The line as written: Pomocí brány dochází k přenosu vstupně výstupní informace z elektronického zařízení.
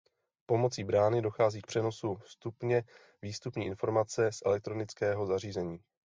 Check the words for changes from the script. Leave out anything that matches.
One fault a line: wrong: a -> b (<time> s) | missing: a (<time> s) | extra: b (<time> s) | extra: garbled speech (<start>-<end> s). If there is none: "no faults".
no faults